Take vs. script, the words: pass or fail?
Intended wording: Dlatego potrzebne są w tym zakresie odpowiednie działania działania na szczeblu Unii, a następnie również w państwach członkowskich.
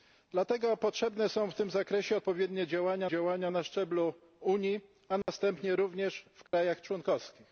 pass